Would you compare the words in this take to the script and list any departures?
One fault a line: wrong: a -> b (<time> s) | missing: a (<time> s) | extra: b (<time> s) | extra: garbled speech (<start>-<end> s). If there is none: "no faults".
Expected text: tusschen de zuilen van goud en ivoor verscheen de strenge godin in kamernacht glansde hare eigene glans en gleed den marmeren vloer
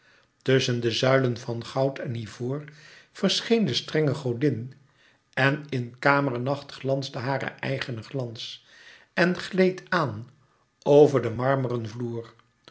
extra: en (5.3 s)
extra: aan over (9.9 s)